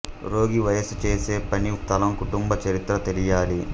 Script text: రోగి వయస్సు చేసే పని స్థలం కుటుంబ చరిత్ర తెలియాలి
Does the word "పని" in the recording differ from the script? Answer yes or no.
no